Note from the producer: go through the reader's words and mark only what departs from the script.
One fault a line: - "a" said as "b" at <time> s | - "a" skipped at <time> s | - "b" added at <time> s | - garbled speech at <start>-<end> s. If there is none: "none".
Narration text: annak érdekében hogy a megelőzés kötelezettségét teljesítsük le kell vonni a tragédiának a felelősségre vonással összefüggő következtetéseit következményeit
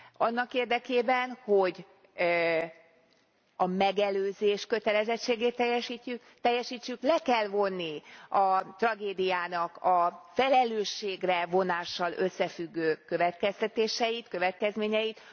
none